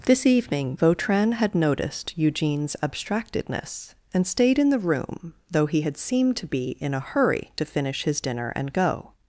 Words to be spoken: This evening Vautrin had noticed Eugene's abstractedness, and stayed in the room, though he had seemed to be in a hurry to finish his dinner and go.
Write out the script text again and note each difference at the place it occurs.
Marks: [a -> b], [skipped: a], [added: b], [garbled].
This evening Vautrin had noticed Eugene's abstractedness, and stayed in the room, though he had seemed to be in a hurry to finish his dinner and go.